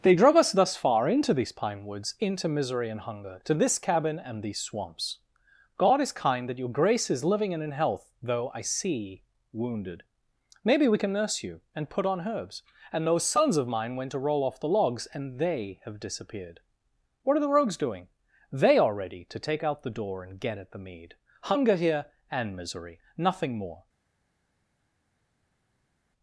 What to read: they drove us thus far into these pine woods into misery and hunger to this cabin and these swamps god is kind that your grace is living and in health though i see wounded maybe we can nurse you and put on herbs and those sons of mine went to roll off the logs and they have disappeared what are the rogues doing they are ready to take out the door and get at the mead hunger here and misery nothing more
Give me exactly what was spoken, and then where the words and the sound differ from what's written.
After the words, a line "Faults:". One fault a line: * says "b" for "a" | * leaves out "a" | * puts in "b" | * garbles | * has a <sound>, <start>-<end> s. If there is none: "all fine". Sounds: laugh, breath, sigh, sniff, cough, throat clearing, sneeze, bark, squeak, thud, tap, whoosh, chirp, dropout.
they drove us thus far into these pine woods into misery and hunger to this cabin and these swamps god is kind that your grace is living and in health though i see wounded maybe we can nurse you and put on herbs and those sons of mine went to roll off the logs and they have disappeared what are the rogues doing they are ready to take out the door and get at the mead hunger here and misery nothing more
Faults:
all fine